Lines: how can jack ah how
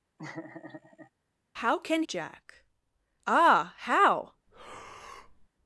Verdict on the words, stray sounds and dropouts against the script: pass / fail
fail